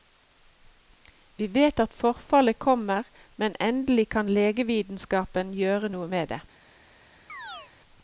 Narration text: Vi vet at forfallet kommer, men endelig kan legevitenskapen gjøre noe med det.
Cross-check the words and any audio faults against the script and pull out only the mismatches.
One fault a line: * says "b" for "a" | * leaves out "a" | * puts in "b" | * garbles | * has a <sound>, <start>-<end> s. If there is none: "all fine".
* has a chirp, 7.3-7.7 s